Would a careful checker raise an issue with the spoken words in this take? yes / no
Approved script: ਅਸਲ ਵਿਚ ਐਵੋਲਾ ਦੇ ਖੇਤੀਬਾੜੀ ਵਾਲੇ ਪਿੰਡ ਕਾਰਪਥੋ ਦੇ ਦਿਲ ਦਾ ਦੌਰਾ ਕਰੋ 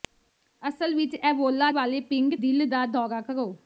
yes